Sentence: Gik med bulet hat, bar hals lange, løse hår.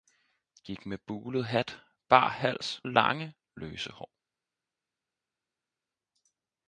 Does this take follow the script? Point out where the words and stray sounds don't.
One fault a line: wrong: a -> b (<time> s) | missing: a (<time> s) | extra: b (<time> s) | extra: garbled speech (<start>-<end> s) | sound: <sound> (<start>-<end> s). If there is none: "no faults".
no faults